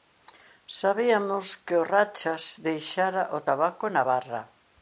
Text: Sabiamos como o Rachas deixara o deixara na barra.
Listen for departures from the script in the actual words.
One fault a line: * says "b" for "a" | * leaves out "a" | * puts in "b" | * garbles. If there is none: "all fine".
* says "que" for "como"
* says "tabaco" for "deixara"